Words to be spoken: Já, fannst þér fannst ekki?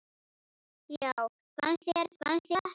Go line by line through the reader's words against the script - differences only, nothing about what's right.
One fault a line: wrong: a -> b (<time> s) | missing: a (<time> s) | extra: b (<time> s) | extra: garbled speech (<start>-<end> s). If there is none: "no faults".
no faults